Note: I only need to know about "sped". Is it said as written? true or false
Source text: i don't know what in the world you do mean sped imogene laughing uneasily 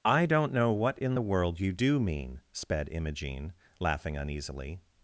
true